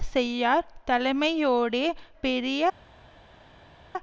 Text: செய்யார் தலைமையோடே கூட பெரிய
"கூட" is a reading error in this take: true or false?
true